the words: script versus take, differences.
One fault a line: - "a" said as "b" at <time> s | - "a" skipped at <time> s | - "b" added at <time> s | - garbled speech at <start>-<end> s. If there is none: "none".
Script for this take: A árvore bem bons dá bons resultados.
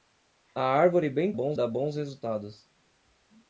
none